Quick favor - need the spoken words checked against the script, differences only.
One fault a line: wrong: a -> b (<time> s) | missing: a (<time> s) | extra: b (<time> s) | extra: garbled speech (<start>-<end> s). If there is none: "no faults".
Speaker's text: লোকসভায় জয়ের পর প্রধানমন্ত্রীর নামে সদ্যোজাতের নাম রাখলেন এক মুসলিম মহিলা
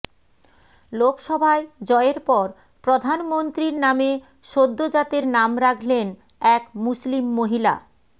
no faults